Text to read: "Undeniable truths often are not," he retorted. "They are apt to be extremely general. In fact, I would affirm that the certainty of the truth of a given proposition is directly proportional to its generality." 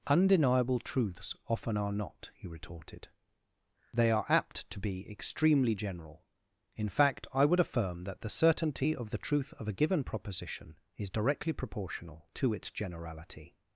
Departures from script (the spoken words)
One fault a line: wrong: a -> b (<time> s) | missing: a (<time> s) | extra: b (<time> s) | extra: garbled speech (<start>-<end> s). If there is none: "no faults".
no faults